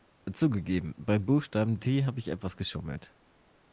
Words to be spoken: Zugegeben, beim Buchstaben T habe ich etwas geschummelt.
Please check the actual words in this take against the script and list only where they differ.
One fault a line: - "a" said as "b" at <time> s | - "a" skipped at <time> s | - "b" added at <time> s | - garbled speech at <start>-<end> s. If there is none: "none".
none